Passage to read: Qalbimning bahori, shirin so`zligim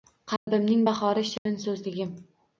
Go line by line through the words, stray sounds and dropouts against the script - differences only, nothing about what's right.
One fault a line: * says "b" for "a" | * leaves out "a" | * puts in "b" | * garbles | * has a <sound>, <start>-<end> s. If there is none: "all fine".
* has a dropout, 0.4-0.5 s
* has a dropout, 1.4-1.5 s